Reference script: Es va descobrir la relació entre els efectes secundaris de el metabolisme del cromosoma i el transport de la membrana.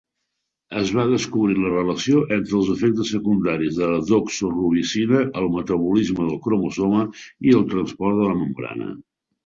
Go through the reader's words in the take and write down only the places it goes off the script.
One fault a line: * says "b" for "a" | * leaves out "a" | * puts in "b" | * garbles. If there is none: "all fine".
* puts in "la doxorubicina"